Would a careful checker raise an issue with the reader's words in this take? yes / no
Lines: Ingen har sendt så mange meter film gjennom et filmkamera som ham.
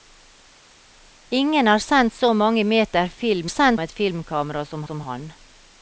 yes